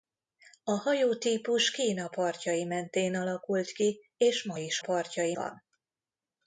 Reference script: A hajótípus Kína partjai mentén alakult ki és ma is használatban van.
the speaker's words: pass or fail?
fail